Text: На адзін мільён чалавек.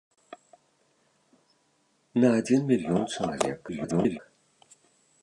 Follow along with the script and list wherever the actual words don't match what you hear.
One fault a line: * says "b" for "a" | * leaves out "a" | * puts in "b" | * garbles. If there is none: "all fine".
* garbles